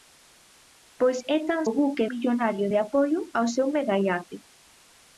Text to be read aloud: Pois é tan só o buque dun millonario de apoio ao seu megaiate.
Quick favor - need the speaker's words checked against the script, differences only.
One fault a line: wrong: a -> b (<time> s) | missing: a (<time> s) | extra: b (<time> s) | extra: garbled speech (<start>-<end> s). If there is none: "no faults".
missing: só (1.6 s)
missing: dun (2.0 s)